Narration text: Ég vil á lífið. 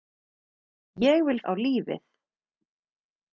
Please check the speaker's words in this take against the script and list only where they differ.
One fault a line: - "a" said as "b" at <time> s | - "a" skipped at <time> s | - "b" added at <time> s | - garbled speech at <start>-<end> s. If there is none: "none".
none